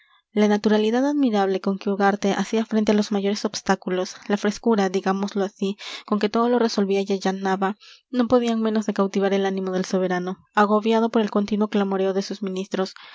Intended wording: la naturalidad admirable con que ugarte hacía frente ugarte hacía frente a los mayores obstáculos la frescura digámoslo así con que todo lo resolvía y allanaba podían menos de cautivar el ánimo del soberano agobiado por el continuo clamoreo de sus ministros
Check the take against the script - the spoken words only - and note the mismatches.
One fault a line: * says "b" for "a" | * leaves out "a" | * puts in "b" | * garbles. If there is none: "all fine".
* leaves out "ugarte hacía frente"
* puts in "no"